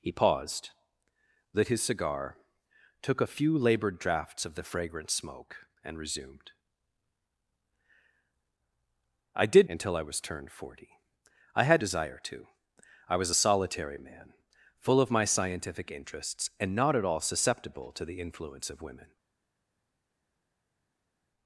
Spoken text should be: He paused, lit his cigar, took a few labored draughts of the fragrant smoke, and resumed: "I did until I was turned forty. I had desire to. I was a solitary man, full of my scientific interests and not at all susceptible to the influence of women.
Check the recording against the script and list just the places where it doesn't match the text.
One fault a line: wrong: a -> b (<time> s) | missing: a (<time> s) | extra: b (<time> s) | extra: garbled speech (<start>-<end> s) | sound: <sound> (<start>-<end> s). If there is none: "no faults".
no faults